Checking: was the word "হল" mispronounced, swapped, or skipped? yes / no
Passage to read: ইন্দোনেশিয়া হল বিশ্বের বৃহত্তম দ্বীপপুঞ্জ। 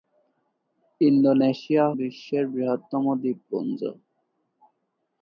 yes